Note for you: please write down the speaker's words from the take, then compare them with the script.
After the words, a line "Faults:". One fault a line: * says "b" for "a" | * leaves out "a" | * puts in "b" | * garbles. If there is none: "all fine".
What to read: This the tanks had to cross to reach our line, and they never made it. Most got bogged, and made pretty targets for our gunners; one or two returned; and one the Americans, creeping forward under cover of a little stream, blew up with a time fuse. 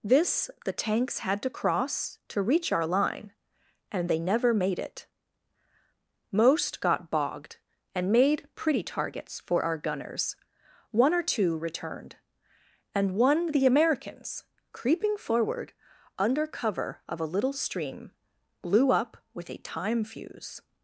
This the tanks had to cross to reach our line, and they never made it. Most got bogged, and made pretty targets for our gunners; one or two returned; and one the Americans, creeping forward under cover of a little stream, blew up with a time fuse.
Faults:
all fine